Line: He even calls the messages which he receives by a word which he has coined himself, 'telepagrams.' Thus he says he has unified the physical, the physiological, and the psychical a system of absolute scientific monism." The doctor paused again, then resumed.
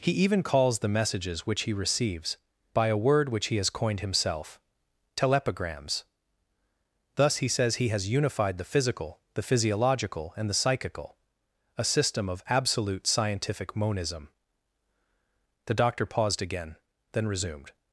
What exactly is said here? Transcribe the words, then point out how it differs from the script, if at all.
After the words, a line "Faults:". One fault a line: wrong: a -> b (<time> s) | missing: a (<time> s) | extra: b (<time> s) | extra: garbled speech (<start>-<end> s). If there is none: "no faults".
He even calls the messages which he receives by a word which he has coined himself, 'telepagrams.' Thus he says he has unified the physical, the physiological, and the psychical a system of absolute scientific monism." The doctor paused again, then resumed.
Faults:
no faults